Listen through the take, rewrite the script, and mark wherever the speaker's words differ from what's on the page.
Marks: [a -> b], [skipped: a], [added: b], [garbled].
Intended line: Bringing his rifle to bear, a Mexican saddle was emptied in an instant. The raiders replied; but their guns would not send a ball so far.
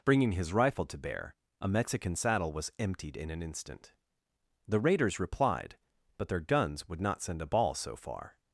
Bringing his rifle to bear, a Mexican saddle was emptied in an instant. The raiders replied; but their guns would not send a ball so far.